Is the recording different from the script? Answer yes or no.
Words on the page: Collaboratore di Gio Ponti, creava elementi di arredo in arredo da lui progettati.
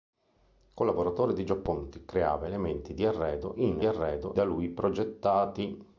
no